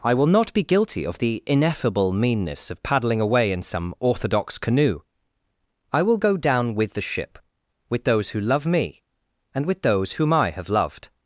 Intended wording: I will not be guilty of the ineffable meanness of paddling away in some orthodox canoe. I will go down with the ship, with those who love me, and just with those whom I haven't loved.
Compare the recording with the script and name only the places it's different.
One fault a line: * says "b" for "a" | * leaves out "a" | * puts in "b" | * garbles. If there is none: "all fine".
* leaves out "just"
* says "have" for "haven't"